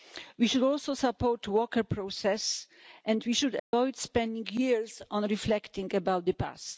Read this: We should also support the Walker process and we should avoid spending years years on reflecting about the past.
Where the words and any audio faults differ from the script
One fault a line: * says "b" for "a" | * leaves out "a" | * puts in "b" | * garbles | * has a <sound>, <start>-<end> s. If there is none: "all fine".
* has a dropout, 3.6-3.7 s
* leaves out "years"